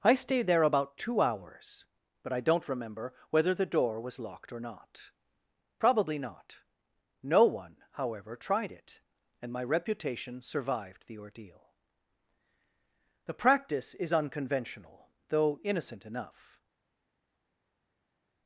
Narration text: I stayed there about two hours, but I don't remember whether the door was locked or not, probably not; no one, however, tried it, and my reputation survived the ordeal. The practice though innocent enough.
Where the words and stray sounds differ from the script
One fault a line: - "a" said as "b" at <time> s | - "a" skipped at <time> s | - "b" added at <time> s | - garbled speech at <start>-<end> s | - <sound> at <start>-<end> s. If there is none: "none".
- "is unconventional" added at 13.9 s